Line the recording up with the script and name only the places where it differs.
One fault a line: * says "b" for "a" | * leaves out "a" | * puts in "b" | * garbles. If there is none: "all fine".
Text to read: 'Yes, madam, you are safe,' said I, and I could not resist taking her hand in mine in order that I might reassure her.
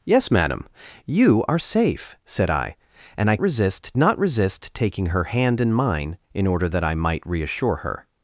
* says "resist" for "could"